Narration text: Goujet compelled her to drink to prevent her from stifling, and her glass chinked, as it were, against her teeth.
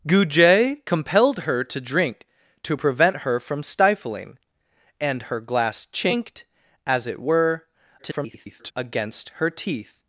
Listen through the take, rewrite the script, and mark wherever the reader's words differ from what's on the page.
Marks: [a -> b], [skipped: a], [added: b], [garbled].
Goujet compelled her to drink to prevent her from stifling, and her glass chinked, as it were, [garbled] against her teeth.